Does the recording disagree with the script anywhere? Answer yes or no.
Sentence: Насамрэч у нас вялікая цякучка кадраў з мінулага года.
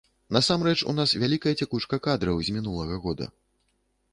no